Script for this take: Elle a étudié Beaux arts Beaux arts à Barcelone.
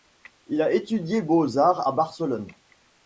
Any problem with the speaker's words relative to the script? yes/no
yes